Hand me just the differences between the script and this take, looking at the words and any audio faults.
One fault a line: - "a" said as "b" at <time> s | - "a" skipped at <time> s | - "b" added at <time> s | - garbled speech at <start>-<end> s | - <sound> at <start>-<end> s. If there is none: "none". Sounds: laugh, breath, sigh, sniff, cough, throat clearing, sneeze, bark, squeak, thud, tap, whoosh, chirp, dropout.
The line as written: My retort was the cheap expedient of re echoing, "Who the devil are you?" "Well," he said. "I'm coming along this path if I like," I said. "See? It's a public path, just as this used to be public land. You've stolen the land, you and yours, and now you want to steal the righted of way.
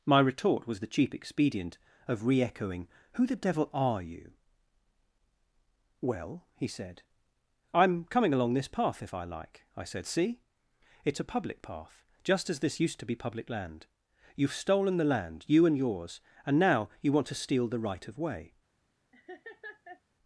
- "righted" said as "right" at 17.8 s
- laugh at 19.1-20.0 s